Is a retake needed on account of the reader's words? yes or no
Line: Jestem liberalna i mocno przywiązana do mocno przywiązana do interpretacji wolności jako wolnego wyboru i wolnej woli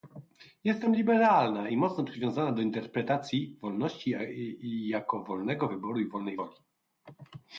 yes